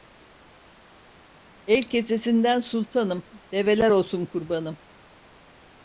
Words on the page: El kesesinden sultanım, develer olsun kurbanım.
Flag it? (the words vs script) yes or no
no